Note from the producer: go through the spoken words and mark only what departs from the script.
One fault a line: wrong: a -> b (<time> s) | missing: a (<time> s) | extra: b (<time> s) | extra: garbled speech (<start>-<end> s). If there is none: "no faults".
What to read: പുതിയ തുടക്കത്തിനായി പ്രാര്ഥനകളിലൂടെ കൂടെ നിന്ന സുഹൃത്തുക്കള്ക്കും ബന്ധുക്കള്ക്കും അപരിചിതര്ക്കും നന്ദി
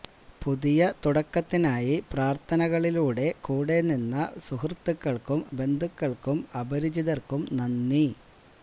no faults